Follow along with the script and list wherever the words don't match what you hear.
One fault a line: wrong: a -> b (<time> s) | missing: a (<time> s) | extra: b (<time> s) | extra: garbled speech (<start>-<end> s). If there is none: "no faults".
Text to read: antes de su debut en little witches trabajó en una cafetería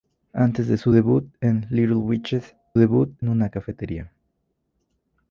wrong: trabajó -> debut (2.8 s)